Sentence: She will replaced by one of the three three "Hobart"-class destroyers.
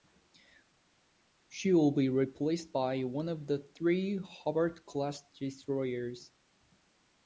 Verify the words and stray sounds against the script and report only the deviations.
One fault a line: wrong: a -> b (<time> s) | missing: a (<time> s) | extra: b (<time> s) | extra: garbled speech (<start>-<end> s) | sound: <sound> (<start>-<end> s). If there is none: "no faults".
extra: be (1.9 s)
missing: three (4.2 s)